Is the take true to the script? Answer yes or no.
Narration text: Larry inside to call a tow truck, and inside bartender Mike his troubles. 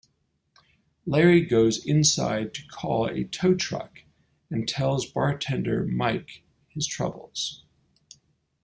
no